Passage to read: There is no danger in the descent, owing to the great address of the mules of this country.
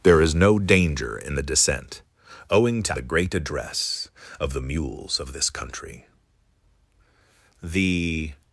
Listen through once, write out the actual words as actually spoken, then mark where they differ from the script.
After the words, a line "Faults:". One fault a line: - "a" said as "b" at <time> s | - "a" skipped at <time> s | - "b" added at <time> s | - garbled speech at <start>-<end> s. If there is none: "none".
There is no danger in the descent, owing to the great address of the mules of this country. The
Faults:
- "The" added at 7.6 s